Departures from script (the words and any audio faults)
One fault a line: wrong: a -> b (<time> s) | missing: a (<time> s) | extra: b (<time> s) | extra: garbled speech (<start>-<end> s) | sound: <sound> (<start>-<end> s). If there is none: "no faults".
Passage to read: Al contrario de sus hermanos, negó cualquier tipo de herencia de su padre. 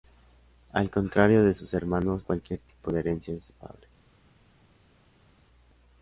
missing: negó (2.3 s)